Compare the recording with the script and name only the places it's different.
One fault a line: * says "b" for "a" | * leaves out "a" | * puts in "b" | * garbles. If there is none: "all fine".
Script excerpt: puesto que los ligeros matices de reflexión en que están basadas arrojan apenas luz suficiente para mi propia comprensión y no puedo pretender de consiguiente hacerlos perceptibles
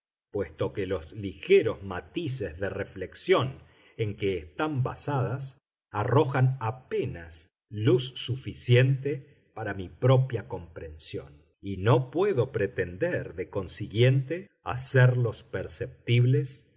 all fine